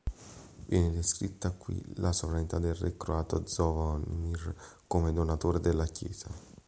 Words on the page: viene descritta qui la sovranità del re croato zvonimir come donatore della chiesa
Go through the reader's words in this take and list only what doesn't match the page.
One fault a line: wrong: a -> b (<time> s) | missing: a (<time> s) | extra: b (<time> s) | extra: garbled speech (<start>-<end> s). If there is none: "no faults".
no faults